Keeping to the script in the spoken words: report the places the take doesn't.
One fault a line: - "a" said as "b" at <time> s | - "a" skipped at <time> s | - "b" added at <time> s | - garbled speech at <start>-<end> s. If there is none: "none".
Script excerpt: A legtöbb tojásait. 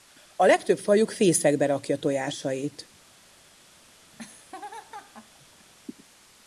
- "fajuk fészekbe rakja" added at 0.8 s